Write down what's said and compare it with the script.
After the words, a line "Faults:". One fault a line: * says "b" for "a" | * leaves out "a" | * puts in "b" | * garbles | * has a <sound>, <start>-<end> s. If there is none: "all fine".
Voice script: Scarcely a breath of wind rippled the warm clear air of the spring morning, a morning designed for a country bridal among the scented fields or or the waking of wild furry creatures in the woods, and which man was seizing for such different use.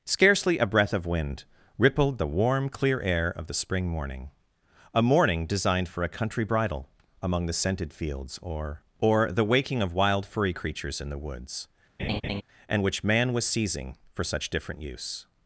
Scarcely a breath of wind rippled the warm clear air of the spring morning, a morning designed for a country bridal among the scented fields or or the waking of wild furry creatures in the woods, and which man was seizing for such different use.
Faults:
* has a laugh, 12.0-12.4 s